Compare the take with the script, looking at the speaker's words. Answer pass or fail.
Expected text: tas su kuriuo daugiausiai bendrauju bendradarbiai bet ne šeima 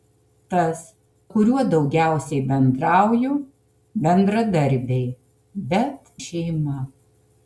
fail